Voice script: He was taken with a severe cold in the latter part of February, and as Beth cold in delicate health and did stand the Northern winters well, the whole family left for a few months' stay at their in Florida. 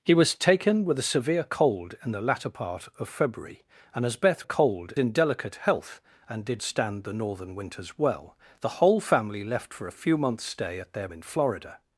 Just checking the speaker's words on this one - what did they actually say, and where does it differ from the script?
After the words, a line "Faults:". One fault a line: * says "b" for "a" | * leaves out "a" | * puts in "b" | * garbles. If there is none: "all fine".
He was taken with a severe cold in the latter part of February, and as Beth cold in delicate health and did stand the Northern winters well, the whole family left for a few months' stay at their in Florida.
Faults:
all fine